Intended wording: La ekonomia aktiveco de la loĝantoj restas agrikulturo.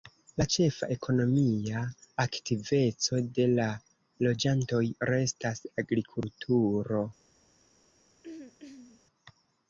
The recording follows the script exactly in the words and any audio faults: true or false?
false